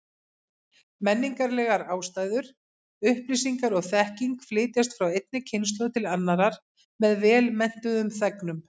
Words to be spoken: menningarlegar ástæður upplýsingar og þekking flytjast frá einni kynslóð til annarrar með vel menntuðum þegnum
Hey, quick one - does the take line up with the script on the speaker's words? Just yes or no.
yes